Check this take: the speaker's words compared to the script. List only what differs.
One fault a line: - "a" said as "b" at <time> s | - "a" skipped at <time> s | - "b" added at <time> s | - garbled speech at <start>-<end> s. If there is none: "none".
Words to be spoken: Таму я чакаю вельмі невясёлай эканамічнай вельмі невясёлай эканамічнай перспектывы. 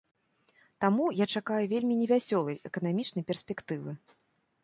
- "вельмі невясёлай эканамічнай" skipped at 3.2 s